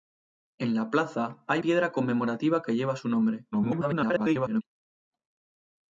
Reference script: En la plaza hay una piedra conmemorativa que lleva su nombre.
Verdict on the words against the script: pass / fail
fail